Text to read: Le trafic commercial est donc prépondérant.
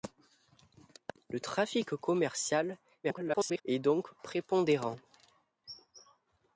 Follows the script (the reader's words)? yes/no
no